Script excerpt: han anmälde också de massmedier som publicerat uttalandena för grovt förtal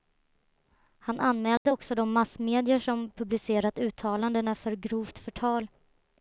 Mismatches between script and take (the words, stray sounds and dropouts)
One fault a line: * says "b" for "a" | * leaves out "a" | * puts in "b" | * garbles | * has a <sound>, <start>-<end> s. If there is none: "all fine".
* has a dropout, 1.6-1.7 s